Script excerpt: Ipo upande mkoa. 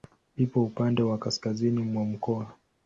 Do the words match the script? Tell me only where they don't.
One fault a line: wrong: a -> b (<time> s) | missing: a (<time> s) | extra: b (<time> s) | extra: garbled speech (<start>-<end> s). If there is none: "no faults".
extra: wa kaskazini mwa (1.0 s)